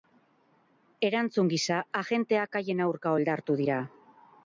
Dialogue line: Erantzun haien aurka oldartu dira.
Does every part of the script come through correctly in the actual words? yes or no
no